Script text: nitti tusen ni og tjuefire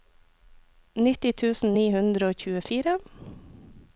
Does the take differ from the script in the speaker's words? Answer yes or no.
yes